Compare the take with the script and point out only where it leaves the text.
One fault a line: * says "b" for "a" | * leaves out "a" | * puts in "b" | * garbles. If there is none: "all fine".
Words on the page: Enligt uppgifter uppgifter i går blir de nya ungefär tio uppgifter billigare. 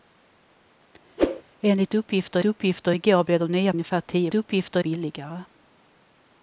all fine